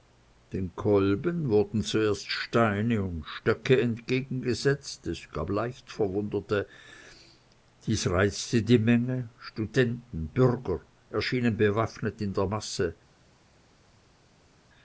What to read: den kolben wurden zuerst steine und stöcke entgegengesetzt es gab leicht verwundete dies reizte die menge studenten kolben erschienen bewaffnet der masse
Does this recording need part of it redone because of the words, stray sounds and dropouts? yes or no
yes